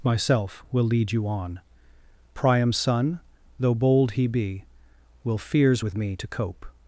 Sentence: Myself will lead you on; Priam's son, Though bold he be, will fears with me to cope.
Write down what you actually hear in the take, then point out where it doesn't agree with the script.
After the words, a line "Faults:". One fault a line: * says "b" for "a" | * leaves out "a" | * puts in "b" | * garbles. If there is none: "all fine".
Myself will lead you on; Priam's son, Though bold he be, will fears with me to cope.
Faults:
all fine